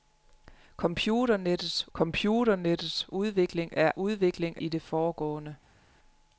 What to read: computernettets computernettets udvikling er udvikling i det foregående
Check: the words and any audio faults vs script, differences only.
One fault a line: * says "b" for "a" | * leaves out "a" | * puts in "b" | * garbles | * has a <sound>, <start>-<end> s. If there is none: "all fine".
all fine